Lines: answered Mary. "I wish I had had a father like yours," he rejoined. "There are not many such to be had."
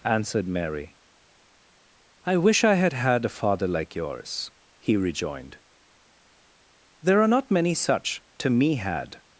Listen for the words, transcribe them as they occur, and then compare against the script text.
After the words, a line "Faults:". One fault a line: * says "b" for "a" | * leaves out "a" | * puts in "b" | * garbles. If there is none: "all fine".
answered Mary. "I wish I had had a father like yours," he rejoined. "There are not many such to me had."
Faults:
* says "me" for "be"